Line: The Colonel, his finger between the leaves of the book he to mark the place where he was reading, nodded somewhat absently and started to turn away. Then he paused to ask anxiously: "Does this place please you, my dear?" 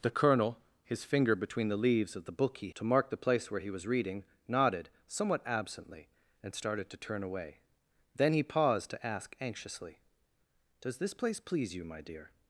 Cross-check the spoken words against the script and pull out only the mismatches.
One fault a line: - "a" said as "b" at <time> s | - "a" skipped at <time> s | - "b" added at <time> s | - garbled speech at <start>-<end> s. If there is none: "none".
none